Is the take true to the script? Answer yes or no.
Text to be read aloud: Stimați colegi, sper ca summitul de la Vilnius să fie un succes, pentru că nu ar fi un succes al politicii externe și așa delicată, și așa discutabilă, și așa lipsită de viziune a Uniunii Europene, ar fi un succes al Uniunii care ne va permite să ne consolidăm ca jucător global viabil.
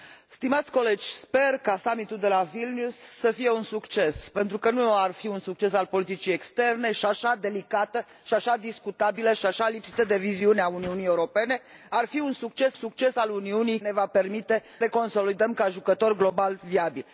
no